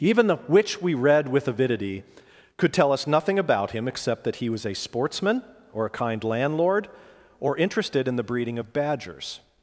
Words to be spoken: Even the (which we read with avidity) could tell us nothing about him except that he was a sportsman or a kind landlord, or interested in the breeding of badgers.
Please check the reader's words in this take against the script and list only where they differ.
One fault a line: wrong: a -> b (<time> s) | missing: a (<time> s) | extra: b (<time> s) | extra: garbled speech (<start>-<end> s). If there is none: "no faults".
no faults